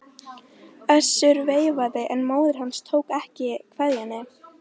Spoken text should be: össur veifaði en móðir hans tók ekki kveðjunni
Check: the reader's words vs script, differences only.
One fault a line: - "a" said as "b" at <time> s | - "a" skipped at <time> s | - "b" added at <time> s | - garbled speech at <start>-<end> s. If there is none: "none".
none